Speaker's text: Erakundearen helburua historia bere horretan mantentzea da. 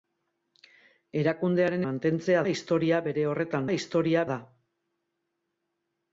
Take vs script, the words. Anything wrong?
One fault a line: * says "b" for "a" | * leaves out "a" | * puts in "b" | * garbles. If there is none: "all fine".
* says "mantentzea" for "helburua"
* says "historia" for "mantentzea"